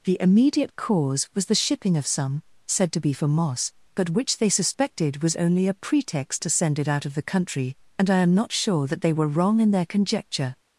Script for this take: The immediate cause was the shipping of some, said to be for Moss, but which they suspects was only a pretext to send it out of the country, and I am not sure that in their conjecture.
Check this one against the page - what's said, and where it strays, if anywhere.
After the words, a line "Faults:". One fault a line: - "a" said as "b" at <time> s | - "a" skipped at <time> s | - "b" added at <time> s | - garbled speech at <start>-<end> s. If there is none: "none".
The immediate cause was the shipping of some, said to be for Moss, but which they suspected was only a pretext to send it out of the country, and I am not sure that they were wrong in their conjecture.
Faults:
- "suspects" said as "suspected" at 4.5 s
- "they were wrong" added at 9.0 s